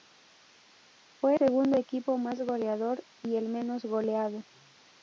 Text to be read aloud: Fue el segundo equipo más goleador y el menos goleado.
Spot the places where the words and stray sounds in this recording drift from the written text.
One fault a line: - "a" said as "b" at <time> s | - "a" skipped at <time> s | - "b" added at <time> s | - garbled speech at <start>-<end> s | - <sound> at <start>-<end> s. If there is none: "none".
- "el" skipped at 1.3 s